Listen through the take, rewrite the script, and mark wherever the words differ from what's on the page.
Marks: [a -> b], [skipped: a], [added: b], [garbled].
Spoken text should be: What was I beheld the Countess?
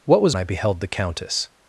What was I beheld the Countess?